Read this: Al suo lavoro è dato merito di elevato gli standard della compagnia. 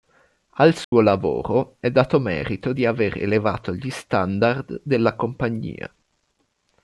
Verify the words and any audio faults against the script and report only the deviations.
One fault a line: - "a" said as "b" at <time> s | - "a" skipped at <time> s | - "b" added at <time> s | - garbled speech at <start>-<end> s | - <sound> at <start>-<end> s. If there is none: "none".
- dropout at 0.8-0.9 s
- "aver" added at 2.9 s